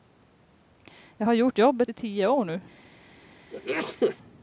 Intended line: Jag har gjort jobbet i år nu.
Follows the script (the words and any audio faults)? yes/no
no